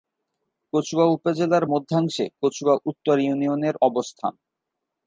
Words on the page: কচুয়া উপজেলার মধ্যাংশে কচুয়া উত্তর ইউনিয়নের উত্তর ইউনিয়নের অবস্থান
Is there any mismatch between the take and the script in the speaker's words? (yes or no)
yes